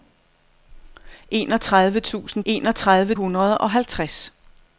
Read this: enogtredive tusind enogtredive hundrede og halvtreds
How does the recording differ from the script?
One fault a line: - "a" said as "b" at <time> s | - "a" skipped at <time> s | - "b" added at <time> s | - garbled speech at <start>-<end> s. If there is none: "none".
none